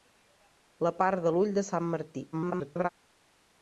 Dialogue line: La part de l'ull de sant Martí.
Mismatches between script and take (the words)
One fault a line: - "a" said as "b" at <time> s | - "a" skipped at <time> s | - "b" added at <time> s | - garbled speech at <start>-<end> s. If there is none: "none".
- garbled speech at 2.3-2.9 s